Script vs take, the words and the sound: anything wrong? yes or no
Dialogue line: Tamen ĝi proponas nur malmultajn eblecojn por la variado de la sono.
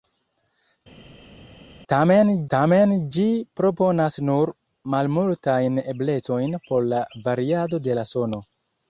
yes